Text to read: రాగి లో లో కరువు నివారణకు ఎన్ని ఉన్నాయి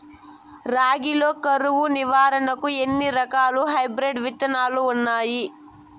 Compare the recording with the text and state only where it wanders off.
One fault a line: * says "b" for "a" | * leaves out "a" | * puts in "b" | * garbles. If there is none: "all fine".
* leaves out "లో"
* puts in "రకాల హైబ్రిడ్ విత్తనాలు"